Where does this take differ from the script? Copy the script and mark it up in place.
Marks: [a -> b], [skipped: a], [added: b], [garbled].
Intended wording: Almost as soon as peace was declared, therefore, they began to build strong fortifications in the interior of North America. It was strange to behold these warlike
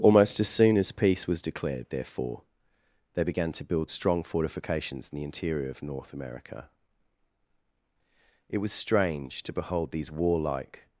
Almost as soon as peace was declared, therefore, they began to build strong fortifications in the interior of North America. It was strange to behold these warlike